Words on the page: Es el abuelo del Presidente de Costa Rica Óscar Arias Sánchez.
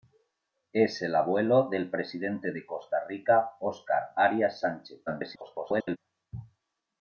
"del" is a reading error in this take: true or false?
false